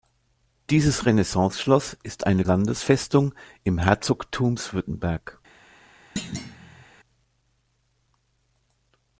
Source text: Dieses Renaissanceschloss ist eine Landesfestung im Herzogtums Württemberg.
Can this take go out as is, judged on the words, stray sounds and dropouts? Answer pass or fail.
fail